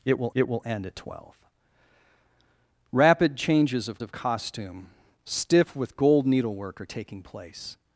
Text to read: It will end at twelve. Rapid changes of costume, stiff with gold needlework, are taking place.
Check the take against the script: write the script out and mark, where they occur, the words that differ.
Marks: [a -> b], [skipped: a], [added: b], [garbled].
It will [added: it will] end at twelve. Rapid changes of [added: of] costume, stiff with gold needlework, are taking place.